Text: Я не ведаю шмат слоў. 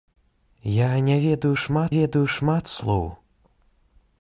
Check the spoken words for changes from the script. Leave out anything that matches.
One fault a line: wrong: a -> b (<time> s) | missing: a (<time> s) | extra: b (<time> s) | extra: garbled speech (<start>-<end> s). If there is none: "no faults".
extra: ведаю шмат (2.0 s)